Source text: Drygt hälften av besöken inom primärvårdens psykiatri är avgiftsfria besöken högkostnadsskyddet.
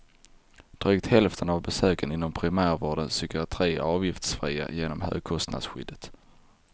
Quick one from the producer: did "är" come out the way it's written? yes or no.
yes